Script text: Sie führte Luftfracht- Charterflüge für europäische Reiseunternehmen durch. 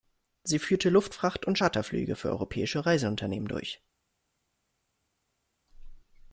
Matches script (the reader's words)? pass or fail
fail